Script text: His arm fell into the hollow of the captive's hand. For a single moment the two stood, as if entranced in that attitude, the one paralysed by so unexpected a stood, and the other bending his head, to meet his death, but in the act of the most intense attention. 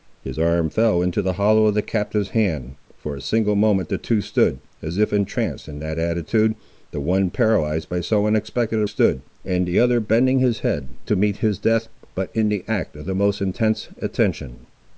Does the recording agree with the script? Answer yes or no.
yes